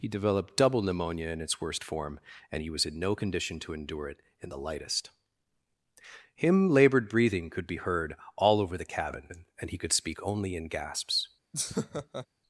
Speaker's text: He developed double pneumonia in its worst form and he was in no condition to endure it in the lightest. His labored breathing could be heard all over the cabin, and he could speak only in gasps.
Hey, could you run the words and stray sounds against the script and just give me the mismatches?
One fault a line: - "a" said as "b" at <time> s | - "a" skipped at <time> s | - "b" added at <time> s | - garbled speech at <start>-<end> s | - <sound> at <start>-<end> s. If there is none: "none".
- "His" said as "Him" at 6.3 s
- laugh at 11.5-12.3 s